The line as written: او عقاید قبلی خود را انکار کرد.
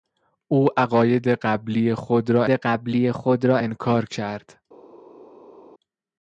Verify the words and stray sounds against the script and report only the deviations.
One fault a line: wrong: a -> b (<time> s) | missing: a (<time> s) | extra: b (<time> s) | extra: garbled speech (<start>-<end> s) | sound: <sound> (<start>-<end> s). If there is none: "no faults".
extra: قبلی خود را (2.5 s)